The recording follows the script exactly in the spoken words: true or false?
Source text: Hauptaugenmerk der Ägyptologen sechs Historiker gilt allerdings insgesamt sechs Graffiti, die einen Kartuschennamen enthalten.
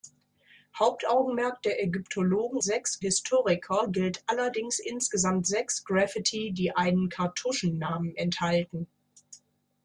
true